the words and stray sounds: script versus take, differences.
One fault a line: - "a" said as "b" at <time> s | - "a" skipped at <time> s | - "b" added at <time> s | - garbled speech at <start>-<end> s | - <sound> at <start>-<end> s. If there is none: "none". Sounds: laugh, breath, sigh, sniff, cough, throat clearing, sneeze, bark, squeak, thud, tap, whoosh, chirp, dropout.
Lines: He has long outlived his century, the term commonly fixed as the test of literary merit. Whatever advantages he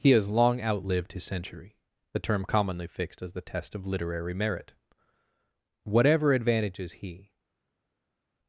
none